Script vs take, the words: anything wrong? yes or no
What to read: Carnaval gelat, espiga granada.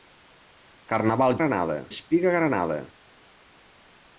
yes